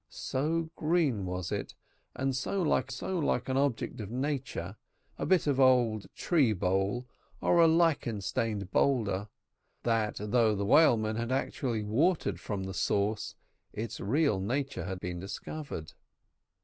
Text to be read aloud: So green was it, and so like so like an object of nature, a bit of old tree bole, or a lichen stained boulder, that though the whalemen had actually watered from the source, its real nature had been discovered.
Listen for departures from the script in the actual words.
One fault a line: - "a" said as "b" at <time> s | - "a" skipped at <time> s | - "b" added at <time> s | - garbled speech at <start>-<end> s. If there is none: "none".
none